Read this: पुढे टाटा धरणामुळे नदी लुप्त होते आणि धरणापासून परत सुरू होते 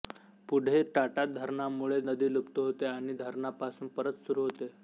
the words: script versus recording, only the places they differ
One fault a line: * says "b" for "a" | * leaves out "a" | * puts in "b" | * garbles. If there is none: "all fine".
all fine